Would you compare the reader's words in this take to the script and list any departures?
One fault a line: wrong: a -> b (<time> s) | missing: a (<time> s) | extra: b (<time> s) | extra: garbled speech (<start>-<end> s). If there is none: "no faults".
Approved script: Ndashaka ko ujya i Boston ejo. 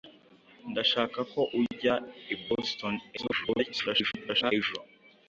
extra: garbled speech (3.2-4.5 s)